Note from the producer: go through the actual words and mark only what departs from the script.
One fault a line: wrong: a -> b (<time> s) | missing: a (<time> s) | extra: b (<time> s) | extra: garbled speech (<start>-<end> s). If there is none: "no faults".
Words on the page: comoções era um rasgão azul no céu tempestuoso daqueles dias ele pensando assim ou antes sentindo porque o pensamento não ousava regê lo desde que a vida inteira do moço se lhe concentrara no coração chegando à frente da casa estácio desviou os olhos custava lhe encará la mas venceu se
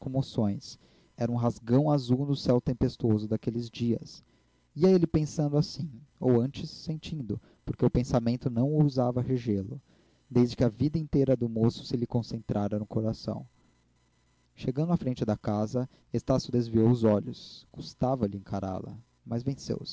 extra: ia (4.8 s)